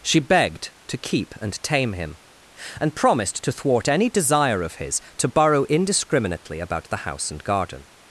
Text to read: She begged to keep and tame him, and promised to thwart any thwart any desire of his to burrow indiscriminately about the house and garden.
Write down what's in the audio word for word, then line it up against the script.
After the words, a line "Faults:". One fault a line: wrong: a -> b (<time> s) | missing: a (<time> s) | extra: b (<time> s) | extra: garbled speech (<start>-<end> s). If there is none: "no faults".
She begged to keep and tame him, and promised to thwart any desire of his to burrow indiscriminately about the house and garden.
Faults:
missing: thwart any (4.1 s)